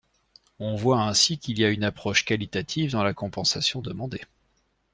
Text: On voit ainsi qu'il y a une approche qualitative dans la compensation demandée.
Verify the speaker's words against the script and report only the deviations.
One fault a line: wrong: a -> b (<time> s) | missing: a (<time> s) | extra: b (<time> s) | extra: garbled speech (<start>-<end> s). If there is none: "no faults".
no faults